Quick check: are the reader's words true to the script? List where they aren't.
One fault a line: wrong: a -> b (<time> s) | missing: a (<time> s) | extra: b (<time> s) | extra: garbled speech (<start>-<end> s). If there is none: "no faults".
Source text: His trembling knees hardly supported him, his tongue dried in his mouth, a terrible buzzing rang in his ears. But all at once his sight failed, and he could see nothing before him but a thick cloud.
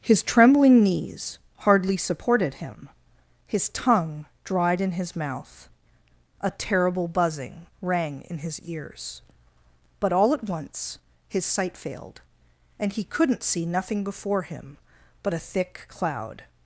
wrong: could -> couldn't (13.0 s)